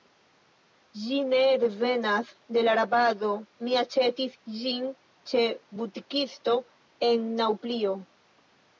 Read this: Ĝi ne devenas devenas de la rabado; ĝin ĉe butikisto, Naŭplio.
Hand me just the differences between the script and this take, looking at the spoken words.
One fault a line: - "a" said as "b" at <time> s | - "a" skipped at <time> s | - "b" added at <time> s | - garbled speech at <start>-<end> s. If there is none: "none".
- "devenas" skipped at 2.3 s
- "mi aĉetis" added at 3.7 s
- "en" added at 7.1 s